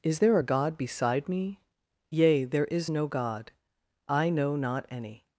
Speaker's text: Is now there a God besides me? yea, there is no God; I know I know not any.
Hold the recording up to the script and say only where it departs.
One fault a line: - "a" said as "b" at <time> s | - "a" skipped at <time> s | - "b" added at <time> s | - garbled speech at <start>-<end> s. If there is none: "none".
- "now" skipped at 0.2 s
- "besides" said as "beside" at 0.8 s
- "I know" skipped at 4.6 s